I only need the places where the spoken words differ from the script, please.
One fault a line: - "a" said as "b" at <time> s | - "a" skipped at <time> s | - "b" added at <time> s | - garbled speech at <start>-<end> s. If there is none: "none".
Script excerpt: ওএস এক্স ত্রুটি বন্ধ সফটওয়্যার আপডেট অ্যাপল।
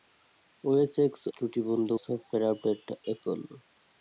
none